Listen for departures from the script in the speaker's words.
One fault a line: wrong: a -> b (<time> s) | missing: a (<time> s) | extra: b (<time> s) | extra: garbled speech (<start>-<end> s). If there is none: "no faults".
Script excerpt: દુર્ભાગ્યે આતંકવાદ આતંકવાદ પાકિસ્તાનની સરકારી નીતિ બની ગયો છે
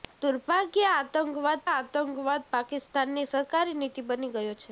no faults